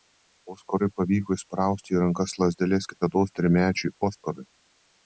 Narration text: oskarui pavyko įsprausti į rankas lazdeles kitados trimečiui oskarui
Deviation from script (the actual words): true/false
false